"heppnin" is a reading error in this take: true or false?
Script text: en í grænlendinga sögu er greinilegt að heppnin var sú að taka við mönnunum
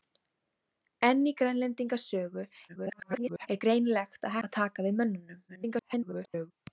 true